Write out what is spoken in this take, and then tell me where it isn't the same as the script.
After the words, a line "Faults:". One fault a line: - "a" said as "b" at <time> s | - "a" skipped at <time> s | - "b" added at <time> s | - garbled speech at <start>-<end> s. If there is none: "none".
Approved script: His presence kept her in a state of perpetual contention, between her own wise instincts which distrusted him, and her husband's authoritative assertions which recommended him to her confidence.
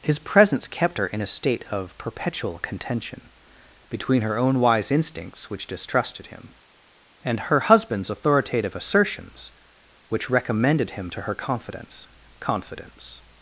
His presence kept her in a state of perpetual contention, between her own wise instincts which distrusted him, and her husband's authoritative assertions which recommended him to her confidence confidence.
Faults:
- "confidence" added at 12.4 s